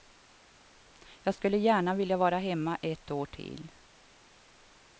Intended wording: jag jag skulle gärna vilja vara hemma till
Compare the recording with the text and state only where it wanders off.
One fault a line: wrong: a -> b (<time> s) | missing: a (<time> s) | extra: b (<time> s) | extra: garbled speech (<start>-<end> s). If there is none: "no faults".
missing: jag (1.4 s)
extra: ett år (2.8 s)